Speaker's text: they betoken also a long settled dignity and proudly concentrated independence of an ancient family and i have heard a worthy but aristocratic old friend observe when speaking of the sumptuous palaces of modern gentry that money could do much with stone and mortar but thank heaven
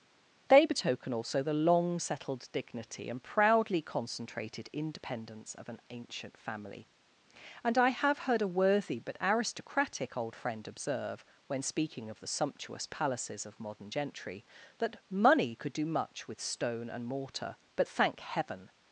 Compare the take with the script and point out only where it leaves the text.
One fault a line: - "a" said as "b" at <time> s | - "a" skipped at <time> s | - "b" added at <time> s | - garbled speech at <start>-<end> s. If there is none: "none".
- "a" said as "the" at 1.4 s